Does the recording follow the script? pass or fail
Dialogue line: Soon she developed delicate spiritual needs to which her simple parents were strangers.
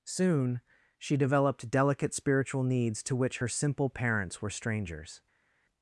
pass